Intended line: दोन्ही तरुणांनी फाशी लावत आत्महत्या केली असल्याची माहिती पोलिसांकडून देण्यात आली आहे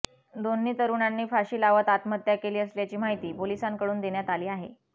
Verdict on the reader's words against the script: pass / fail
pass